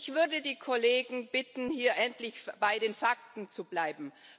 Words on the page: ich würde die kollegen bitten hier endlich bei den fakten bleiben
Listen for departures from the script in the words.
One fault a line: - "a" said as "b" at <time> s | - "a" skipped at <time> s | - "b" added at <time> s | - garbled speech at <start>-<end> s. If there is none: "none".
- "zu" added at 3.5 s